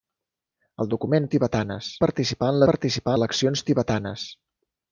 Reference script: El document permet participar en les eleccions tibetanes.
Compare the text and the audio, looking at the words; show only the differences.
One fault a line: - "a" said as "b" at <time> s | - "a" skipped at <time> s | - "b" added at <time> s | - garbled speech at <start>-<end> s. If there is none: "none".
- "permet" said as "tibetanes" at 1.3 s
- "les" said as "participar" at 2.7 s